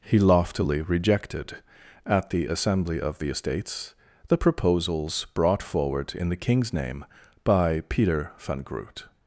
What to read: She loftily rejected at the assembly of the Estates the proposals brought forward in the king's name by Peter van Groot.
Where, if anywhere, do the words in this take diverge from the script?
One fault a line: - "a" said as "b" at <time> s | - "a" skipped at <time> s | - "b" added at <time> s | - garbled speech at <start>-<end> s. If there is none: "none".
- "She" said as "He" at 0.0 s